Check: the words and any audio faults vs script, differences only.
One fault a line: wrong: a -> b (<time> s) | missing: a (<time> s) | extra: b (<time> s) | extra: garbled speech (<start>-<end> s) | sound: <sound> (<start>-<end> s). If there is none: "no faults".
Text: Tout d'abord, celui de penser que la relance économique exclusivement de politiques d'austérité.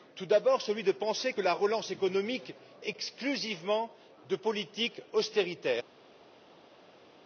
no faults